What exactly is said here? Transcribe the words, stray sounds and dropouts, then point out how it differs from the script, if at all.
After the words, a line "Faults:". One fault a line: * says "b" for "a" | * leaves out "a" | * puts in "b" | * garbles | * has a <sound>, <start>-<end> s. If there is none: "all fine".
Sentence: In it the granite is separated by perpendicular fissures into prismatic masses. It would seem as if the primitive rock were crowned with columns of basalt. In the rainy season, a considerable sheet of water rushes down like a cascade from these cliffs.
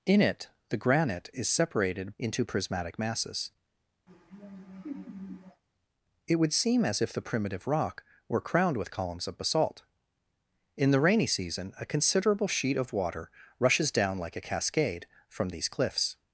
In it the granite is separated into prismatic masses. It would seem as if the primitive rock were crowned with columns of basalt. In the rainy season, a considerable sheet of water rushes down like a cascade from these cliffs.
Faults:
* leaves out "by perpendicular fissures"
* has a laugh, 4.1-5.6 s